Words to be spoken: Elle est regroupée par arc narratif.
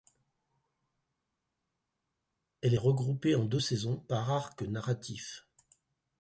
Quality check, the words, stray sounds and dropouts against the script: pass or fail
fail